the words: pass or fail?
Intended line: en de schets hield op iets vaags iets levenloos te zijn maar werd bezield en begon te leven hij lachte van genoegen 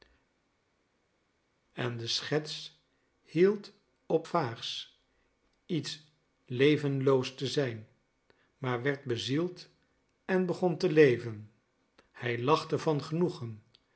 fail